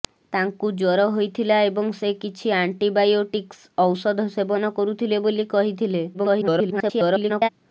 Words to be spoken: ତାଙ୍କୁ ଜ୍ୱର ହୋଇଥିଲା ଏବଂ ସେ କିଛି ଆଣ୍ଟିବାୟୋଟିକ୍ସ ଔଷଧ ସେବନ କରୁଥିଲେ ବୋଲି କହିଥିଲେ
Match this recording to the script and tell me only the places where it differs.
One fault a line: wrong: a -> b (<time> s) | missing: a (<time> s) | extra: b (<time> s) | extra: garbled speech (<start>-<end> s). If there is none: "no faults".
extra: garbled speech (6.1-7.5 s)